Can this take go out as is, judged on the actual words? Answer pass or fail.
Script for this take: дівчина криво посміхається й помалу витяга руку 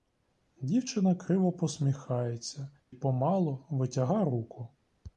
fail